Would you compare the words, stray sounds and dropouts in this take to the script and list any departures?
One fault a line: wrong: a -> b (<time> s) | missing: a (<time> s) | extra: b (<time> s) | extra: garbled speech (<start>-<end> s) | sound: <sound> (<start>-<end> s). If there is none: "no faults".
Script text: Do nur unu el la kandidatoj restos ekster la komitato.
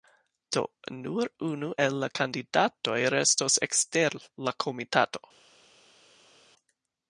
no faults